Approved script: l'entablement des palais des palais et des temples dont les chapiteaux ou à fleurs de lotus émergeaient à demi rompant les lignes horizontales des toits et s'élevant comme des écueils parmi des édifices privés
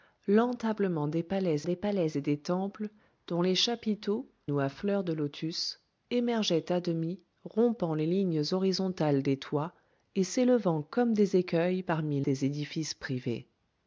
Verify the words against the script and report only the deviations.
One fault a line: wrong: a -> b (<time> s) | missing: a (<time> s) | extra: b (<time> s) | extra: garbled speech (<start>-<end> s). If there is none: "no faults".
no faults